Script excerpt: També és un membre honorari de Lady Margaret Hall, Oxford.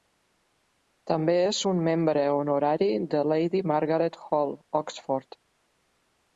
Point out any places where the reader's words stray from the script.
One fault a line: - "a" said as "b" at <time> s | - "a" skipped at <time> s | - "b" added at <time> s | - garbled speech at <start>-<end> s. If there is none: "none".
none